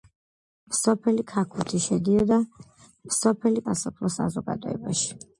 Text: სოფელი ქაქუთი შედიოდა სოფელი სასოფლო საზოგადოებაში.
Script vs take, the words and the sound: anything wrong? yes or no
no